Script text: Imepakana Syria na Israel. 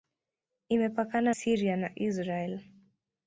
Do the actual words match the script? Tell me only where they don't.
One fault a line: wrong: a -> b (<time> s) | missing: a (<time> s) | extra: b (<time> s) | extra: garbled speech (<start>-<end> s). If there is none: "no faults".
no faults